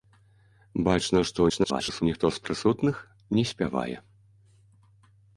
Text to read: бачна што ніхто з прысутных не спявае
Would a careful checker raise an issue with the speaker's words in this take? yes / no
yes